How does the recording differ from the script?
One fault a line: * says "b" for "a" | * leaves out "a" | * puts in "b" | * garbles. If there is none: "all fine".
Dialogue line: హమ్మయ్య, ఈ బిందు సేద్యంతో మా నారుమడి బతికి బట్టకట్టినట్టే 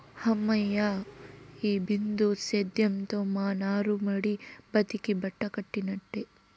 all fine